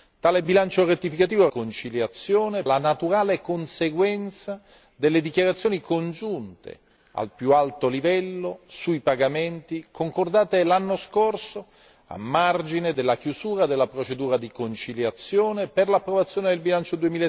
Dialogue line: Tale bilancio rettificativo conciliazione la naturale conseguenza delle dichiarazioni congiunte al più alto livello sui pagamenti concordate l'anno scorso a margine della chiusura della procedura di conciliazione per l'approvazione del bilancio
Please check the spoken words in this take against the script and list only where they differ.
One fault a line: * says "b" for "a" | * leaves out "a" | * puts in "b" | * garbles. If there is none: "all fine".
all fine